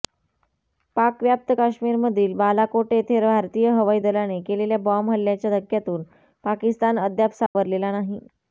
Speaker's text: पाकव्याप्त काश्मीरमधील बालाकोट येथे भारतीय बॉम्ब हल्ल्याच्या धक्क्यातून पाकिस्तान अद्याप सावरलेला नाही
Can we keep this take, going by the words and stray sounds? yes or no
no